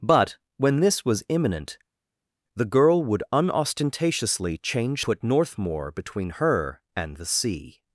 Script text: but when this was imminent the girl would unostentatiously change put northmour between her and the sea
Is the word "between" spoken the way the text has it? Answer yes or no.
yes